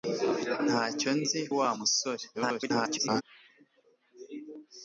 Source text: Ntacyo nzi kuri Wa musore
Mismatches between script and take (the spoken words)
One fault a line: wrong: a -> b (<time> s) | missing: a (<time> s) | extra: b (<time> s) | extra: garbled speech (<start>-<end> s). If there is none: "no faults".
missing: kuri (1.4 s)
extra: garbled speech (2.3-3.2 s)